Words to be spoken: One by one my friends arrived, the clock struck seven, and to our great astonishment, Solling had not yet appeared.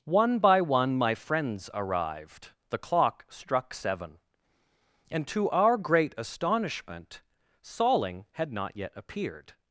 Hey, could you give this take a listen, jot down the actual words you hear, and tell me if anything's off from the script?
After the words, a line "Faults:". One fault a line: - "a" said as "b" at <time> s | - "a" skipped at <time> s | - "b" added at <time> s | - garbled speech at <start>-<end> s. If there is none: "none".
One by one my friends arrived, the clock struck seven, and to our great astonishment, Solling had not yet appeared.
Faults:
none